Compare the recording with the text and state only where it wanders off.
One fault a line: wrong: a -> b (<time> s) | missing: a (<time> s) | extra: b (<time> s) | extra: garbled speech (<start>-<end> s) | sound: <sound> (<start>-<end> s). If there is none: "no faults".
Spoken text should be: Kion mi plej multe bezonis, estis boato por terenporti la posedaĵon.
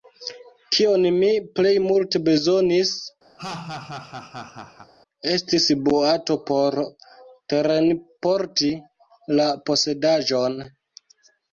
sound: laugh (3.4-4.9 s)